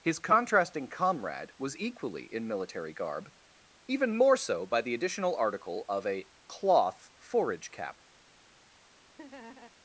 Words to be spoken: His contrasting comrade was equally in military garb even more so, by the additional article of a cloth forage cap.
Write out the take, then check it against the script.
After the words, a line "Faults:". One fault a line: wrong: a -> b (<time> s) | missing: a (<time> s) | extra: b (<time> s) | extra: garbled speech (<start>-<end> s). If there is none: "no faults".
His contrasting comrade was equally in military garb even more so, by the additional article of a cloth forage cap.
Faults:
no faults